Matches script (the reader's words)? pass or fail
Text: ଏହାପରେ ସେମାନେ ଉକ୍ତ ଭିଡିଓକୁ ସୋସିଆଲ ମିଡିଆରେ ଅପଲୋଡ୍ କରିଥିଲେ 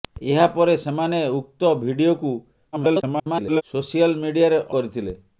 fail